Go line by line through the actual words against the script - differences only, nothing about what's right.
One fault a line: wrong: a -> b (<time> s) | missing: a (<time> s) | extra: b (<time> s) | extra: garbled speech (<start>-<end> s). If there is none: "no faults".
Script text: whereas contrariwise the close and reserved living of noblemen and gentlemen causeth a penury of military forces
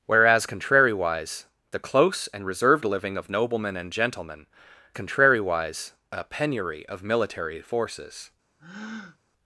wrong: causeth -> contrariwise (4.9 s)